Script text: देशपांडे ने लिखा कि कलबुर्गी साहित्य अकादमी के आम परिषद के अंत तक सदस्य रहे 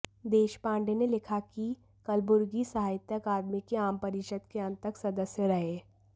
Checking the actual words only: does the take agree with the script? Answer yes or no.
yes